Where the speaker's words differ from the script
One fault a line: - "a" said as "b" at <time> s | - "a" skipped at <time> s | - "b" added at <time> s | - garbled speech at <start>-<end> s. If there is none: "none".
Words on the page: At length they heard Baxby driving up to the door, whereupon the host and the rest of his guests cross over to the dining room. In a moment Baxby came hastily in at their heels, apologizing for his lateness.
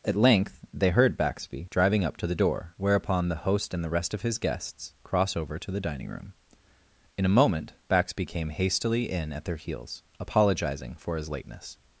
none